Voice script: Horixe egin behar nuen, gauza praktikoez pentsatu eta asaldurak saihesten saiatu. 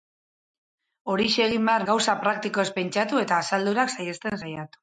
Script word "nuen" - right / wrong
wrong